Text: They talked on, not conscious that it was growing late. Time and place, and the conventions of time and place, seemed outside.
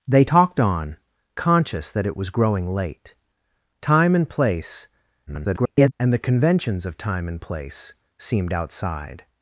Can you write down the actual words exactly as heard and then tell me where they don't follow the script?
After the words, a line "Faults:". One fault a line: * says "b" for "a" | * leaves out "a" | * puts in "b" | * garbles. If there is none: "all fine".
They talked on, conscious that it was growing late. Time and place, [garbled] and the conventions of time and place, seemed outside.
Faults:
* leaves out "not"
* garbles